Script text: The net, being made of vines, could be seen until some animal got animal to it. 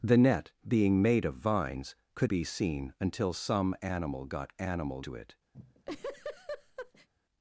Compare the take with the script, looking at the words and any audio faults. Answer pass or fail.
fail